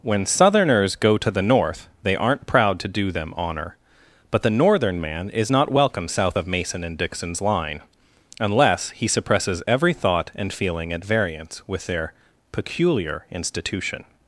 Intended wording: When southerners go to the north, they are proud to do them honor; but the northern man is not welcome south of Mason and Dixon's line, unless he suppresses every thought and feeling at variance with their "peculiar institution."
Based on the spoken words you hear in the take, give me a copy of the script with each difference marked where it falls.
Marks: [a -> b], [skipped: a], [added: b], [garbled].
When southerners go to the north, they [are -> aren't] proud to do them honor; but the northern man is not welcome south of Mason and Dixon's line, unless he suppresses every thought and feeling at variance with their "peculiar institution."